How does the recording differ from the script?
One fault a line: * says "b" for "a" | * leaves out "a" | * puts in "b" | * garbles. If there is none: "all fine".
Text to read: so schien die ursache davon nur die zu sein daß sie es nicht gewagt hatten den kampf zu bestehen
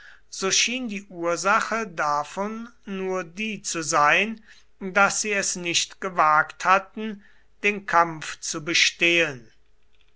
all fine